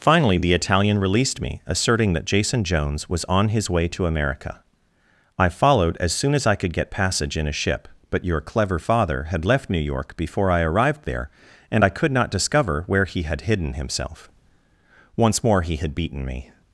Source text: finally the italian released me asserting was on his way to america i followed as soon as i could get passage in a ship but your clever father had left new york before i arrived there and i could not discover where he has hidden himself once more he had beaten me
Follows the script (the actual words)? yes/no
no